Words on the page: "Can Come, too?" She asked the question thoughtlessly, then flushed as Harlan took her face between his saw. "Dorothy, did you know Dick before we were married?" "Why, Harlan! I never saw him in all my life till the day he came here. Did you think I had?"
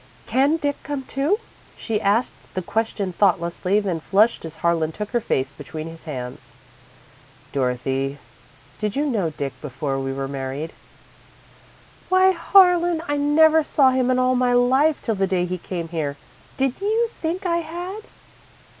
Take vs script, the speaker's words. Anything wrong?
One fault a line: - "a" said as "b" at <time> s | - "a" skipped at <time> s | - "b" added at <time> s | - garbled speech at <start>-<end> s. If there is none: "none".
- "Dick" added at 0.6 s
- "saw" said as "hands" at 6.0 s